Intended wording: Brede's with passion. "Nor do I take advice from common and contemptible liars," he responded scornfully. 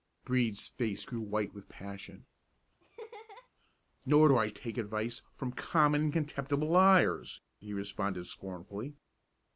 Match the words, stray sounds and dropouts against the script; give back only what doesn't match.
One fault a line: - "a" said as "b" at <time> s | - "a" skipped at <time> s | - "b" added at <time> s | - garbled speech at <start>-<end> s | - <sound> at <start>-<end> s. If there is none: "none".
- "face grew white" added at 0.7 s
- laugh at 2.8-3.5 s